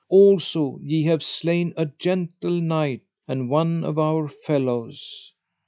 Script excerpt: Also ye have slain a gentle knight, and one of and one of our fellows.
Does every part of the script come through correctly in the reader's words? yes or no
no